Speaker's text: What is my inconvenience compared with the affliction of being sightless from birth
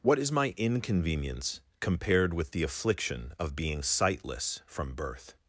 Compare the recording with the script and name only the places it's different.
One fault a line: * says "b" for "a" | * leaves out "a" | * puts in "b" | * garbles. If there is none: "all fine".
all fine